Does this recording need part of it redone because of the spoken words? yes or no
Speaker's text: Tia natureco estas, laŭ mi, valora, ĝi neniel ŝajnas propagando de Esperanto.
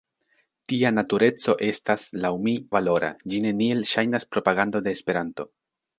no